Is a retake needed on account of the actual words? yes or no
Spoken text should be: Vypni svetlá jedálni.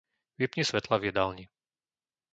yes